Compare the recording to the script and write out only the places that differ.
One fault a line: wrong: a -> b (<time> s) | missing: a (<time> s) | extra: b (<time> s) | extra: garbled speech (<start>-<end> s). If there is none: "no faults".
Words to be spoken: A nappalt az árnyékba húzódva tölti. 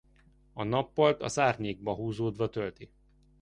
no faults